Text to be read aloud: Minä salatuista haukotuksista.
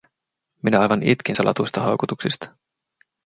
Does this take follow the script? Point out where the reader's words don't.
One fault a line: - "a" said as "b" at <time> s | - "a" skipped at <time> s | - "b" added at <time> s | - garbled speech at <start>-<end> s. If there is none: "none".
- "aivan itkin" added at 0.8 s